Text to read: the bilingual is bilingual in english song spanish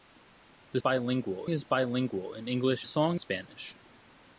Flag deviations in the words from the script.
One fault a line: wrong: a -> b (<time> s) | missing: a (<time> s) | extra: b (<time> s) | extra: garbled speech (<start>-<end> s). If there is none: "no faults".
no faults